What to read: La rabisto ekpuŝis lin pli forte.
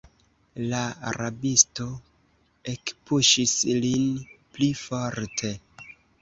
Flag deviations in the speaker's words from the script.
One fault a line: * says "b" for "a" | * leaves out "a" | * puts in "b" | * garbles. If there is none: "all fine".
all fine